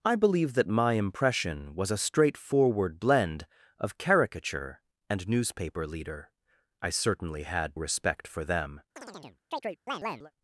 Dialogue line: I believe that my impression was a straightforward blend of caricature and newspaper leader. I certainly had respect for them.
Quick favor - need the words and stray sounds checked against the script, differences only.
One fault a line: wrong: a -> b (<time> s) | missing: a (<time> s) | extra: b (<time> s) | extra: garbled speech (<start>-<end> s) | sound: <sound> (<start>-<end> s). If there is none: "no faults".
sound: chirp (9.0-10.3 s)